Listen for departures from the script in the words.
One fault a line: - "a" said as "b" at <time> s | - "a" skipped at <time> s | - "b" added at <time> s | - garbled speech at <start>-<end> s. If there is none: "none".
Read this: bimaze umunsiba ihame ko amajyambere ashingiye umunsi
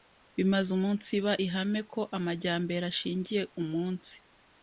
none